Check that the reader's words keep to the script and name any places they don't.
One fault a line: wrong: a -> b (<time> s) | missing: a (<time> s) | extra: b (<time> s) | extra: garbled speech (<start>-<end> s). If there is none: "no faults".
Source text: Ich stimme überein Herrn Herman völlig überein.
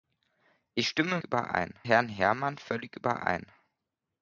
no faults